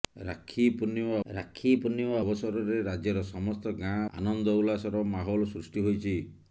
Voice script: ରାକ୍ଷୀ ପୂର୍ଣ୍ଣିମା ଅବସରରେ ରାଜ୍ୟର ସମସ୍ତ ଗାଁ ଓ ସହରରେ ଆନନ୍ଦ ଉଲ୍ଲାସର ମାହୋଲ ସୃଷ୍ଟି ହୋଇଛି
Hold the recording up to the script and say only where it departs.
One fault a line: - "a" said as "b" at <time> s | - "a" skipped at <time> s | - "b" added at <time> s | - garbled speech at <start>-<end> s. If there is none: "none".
- "ରାକ୍ଷୀ ପୂର୍ଣ୍ଣିମା" added at 1.3 s
- "ଓ ସହରରେ" skipped at 4.0 s